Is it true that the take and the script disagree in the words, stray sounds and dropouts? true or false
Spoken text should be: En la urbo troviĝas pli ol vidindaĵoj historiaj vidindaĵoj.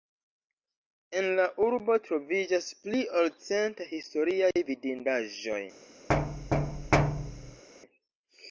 true